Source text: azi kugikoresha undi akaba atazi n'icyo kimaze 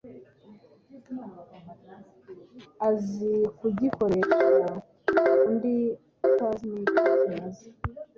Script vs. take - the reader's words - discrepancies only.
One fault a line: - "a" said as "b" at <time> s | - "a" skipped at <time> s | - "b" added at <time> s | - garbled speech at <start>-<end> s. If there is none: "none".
- "akaba" skipped at 5.8 s